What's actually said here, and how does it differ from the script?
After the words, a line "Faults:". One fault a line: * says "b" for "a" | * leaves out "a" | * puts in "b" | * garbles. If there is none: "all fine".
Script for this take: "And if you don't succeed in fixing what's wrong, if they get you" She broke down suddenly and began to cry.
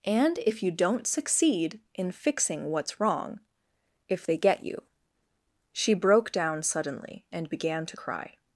"And if you don't succeed in fixing what's wrong, if they get you" She broke down suddenly and began to cry.
Faults:
all fine